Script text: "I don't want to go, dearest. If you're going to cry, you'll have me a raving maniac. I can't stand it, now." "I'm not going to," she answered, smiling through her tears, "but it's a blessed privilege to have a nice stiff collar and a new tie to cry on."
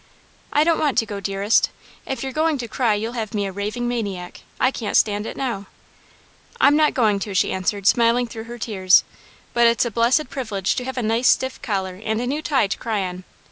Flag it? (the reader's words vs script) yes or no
no